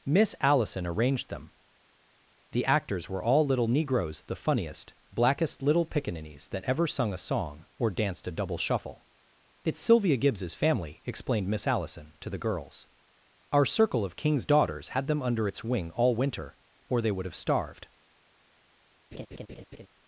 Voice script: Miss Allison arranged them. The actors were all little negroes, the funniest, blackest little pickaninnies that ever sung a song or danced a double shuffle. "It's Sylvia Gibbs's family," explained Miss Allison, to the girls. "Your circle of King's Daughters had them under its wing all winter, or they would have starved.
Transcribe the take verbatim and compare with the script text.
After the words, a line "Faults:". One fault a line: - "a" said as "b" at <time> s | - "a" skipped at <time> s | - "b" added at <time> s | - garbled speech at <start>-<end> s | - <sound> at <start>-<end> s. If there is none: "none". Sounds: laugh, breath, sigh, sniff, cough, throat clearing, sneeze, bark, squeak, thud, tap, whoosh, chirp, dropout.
Miss Allison arranged them. The actors were all little negroes, the funniest, blackest little pickaninnies that ever sung a song or danced a double shuffle. "It's Sylvia Gibbs's family," explained Miss Allison, to the girls. "Our circle of King's Daughters had them under its wing all winter, or they would have starved.
Faults:
- "Your" said as "Our" at 13.5 s
- laugh at 19.1-19.9 s